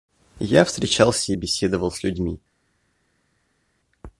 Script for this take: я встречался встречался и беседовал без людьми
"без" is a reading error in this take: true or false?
true